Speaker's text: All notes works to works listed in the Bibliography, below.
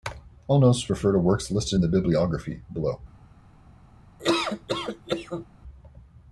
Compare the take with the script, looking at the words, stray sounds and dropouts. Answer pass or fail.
fail